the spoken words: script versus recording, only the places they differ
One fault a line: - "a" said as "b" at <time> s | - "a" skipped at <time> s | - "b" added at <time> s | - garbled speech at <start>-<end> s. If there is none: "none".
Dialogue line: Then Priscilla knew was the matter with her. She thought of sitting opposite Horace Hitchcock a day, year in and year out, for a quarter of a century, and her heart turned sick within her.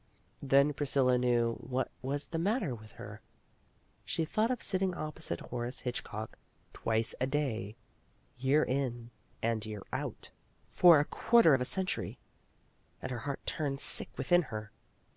- "what" added at 1.6 s
- "twice" added at 6.7 s